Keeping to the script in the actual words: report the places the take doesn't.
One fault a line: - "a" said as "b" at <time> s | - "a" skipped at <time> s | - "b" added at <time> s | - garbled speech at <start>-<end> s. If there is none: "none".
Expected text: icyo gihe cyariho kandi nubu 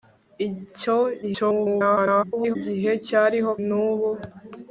- garbled speech at 1.2-2.6 s
- "kandi" skipped at 3.5 s